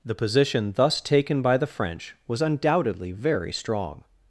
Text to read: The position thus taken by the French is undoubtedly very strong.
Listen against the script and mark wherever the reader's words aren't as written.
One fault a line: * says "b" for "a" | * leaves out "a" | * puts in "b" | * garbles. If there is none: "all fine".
* says "was" for "is"